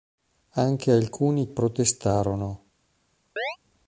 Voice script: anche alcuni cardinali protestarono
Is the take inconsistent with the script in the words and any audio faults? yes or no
yes